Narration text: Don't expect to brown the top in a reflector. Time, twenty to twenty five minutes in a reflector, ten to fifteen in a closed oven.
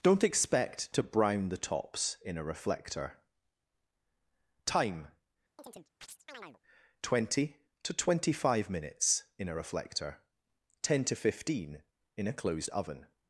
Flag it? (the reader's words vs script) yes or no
yes